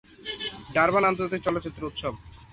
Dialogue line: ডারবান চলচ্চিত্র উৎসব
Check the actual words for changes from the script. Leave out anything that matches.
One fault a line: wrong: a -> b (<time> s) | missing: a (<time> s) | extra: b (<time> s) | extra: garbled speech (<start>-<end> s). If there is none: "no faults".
extra: আন্তর্জাতিক (1.0 s)